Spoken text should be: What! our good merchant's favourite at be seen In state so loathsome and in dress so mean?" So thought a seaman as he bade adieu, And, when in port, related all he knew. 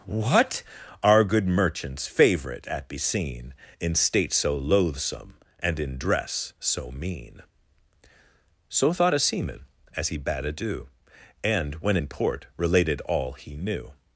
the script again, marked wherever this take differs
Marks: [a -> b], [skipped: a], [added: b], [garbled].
What! our good merchant's favourite at be seen In state so loathsome and in dress so mean?" So thought a seaman as he bade adieu, And, when in port, related all he knew.